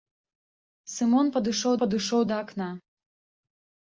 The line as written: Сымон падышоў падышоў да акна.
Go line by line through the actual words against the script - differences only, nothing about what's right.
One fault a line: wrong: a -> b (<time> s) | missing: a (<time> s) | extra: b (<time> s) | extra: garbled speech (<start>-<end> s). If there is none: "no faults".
no faults